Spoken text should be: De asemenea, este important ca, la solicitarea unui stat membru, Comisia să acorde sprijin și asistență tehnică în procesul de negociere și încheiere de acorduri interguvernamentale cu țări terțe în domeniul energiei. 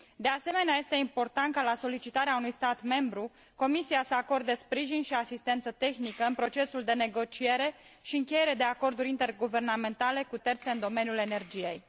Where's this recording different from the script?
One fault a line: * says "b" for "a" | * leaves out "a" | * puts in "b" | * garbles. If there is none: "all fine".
* leaves out "țări"